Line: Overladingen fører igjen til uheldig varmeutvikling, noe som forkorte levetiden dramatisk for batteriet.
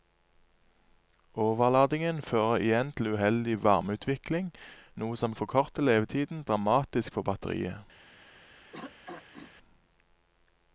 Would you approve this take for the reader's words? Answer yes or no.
yes